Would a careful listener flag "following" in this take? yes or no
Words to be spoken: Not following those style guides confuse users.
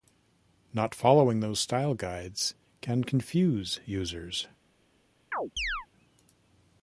no